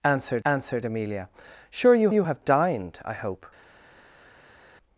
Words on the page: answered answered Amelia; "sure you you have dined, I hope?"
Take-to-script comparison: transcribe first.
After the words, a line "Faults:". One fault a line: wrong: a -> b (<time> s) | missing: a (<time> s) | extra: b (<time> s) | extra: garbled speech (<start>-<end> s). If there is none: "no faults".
answered answered Amelia; "sure you you have dined, I hope?"
Faults:
no faults